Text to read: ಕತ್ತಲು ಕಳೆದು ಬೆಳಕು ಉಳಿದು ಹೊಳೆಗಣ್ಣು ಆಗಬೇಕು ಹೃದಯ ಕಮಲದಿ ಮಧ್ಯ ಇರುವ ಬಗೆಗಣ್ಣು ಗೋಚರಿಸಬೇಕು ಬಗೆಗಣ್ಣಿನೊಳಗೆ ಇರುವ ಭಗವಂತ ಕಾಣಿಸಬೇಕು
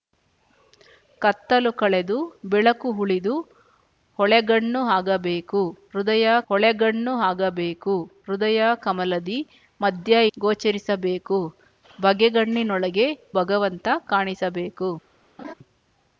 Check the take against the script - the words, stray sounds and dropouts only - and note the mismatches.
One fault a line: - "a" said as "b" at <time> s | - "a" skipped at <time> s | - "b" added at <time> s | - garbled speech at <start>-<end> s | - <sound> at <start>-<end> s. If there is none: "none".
- "ಹೊಳೆಗಣ್ಣು ಆಗಬೇಕು ಹೃದಯ" added at 6.5 s
- "ಇರುವ ಬಗೆಗಣ್ಣು" skipped at 10.2 s
- "ಇರುವ" skipped at 13.1 s
- laugh at 15.4-15.5 s